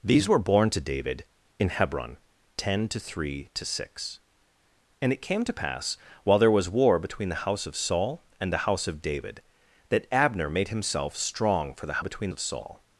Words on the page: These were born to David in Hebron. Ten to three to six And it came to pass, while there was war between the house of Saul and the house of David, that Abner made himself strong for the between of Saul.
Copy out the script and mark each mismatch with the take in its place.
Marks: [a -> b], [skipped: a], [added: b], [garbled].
These were born to David in Hebron. Ten to three to six And it came to pass, while there was war between the house of Saul and the house of David, that Abner made himself strong for the between of Saul.